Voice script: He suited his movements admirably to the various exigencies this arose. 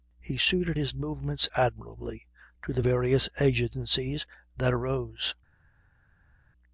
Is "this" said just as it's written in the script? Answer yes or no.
no